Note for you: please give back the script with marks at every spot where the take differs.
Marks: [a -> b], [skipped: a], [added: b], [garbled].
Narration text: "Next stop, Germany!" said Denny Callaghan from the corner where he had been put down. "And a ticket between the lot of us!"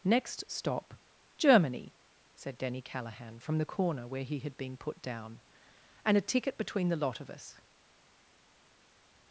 "Next stop, Germany!" said Denny Callaghan from the corner where he had been put down. "And a ticket between the lot of us!"